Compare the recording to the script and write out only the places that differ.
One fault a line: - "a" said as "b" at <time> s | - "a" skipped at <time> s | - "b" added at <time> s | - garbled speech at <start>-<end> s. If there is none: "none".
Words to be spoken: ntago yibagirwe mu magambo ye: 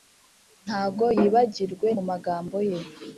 none